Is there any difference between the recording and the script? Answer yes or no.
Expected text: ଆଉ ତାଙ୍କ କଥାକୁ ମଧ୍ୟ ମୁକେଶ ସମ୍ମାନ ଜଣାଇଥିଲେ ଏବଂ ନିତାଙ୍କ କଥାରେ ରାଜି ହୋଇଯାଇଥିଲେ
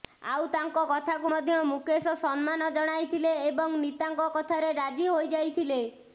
no